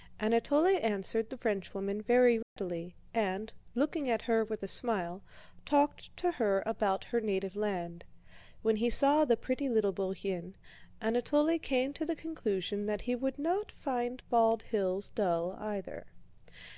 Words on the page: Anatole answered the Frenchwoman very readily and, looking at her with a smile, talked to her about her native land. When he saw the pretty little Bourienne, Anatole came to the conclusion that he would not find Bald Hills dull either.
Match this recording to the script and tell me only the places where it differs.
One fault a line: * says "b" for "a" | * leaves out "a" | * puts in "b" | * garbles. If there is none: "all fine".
all fine